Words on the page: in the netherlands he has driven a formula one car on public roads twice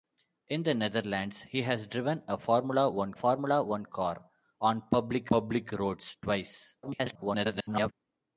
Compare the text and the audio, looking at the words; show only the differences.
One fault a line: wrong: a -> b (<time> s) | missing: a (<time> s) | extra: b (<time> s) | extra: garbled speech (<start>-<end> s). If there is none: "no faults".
extra: formula one (3.1 s)
extra: public (5.3 s)
extra: garbled speech (6.8-7.9 s)